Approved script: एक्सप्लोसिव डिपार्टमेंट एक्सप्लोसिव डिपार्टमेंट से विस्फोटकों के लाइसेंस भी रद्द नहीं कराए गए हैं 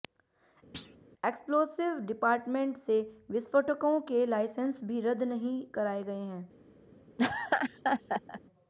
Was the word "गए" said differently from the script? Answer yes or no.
no